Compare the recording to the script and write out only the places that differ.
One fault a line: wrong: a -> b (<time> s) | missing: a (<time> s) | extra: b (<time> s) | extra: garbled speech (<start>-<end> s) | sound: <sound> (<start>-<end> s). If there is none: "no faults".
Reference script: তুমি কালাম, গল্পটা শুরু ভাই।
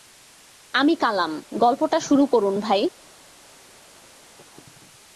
wrong: তুমি -> আমি (0.7 s)
extra: করুন (2.3 s)